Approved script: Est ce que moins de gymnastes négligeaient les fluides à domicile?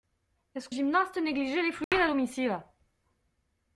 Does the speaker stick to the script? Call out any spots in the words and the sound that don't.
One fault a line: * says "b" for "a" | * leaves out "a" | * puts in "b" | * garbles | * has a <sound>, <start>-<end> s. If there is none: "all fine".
* leaves out "que moins de"
* has a dropout, 1.8-1.9 s